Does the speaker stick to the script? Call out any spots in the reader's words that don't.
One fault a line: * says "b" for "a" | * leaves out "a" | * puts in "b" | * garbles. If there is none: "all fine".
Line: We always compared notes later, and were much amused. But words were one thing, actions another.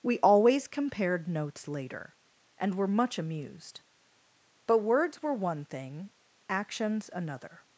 all fine